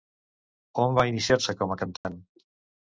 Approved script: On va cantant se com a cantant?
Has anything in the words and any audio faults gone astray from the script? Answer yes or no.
yes